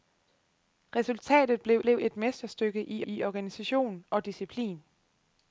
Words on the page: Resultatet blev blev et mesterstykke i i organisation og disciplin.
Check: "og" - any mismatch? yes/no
no